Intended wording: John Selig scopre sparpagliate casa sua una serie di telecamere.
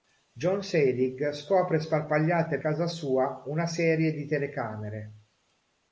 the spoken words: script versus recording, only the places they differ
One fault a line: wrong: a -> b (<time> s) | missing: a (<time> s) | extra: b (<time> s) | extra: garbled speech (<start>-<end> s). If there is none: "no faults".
no faults